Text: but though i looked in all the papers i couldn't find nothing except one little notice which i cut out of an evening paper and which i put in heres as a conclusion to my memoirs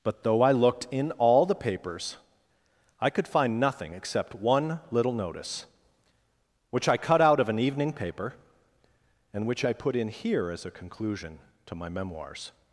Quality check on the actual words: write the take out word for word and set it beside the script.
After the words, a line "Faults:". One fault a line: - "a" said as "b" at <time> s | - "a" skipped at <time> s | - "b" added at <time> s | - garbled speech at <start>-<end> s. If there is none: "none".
but though i looked in all the papers i could find nothing except one little notice which i cut out of an evening paper and which i put in here as a conclusion to my memoirs
Faults:
- "couldn't" said as "could" at 3.1 s
- "heres" said as "here" at 10.1 s